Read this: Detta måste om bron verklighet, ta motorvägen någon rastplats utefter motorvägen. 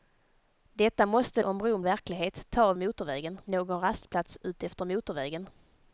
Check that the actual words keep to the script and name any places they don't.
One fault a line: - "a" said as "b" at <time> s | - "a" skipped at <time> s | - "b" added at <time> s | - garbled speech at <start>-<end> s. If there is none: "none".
none